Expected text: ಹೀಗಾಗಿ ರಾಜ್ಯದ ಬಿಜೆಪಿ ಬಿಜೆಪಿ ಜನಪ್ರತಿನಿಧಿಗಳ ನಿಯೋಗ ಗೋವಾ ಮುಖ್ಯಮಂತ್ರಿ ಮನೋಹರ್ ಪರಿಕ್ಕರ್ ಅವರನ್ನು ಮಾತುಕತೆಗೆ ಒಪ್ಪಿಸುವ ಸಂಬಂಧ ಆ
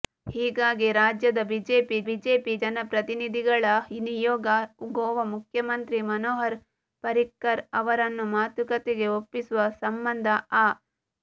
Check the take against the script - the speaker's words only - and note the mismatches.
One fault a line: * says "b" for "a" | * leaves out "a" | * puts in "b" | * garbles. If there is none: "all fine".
all fine